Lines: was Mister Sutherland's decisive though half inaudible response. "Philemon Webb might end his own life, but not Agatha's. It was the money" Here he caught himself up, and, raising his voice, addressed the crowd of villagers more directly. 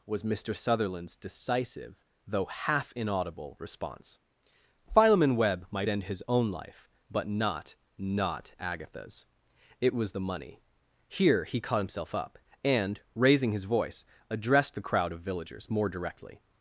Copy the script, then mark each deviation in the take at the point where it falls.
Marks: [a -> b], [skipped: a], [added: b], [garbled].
was Mister Sutherland's decisive though half inaudible response. "Philemon Webb might end his own life, but not [added: not] Agatha's. It was the money" Here he caught himself up, and, raising his voice, addressed the crowd of villagers more directly.